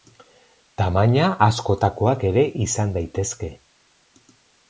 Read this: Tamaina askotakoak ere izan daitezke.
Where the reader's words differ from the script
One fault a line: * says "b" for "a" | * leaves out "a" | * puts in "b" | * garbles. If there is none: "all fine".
all fine